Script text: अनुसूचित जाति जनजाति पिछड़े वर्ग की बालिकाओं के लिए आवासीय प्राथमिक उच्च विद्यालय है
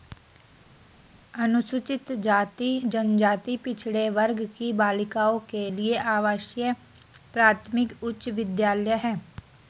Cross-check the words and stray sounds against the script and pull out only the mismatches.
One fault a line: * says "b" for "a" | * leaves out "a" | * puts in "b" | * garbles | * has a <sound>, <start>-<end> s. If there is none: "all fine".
all fine